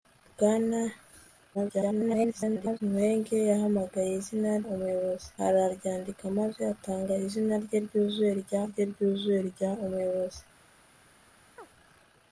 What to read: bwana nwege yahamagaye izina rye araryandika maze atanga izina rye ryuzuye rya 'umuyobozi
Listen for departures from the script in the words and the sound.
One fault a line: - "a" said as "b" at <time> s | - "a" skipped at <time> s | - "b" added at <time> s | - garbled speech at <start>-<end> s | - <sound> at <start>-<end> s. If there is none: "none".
- garbled speech at 1.5-2.8 s
- "rye" said as "umuyobozi" at 4.6 s
- "rye ryuzuye rya" added at 8.7 s
- chirp at 11.6-11.7 s